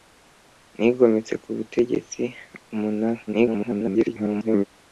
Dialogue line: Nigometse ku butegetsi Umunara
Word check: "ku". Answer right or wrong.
right